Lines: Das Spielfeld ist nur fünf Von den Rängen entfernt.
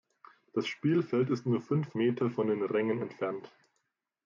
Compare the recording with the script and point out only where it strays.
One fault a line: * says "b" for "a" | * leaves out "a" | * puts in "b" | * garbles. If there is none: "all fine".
* puts in "Meter"